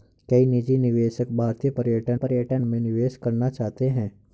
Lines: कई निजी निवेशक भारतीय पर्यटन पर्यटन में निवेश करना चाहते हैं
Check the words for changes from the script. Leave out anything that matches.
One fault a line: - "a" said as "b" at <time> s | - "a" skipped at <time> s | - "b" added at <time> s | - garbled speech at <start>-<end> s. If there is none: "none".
none